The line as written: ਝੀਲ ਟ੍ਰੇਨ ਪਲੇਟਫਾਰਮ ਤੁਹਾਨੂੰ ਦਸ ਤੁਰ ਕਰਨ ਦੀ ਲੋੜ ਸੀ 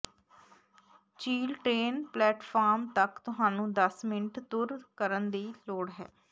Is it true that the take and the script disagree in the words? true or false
true